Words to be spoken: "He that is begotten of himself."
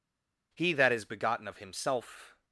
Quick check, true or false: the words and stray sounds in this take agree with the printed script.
true